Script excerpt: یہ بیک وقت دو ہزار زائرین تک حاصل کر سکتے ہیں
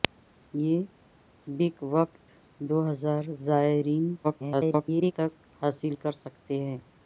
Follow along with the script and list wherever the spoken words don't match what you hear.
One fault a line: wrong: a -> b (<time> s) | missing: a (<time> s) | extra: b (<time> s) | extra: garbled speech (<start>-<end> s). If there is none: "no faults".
extra: garbled speech (4.2-5.1 s)